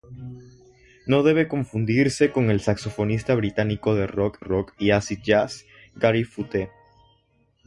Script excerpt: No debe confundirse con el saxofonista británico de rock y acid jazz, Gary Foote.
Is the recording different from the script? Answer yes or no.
yes